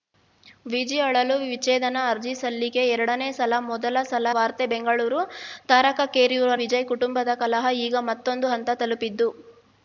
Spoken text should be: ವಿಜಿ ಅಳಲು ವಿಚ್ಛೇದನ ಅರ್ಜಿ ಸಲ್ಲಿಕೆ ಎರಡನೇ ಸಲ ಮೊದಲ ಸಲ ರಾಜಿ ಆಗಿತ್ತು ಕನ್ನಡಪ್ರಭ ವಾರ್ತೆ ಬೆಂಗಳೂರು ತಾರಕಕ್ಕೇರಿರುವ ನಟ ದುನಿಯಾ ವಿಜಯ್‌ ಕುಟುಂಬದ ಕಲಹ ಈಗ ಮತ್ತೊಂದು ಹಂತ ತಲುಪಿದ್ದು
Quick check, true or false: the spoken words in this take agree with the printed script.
false